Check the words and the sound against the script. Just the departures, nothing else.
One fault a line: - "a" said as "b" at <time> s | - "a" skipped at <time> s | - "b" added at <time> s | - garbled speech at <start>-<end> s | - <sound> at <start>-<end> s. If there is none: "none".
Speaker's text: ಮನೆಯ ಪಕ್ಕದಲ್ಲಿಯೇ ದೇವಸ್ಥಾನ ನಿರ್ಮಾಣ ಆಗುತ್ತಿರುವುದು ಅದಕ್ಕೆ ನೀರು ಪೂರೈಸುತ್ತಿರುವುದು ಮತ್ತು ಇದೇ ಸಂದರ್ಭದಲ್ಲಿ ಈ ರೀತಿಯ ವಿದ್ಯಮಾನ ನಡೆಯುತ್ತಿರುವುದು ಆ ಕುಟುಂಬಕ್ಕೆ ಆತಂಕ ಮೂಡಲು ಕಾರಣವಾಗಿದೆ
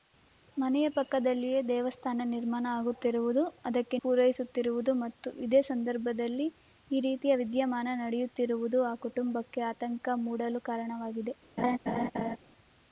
- "ನೀರು" skipped at 4.0 s
- laugh at 11.6-12.4 s